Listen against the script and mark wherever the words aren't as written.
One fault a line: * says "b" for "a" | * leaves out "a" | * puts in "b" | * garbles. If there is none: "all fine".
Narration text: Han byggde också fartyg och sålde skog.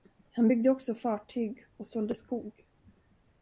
all fine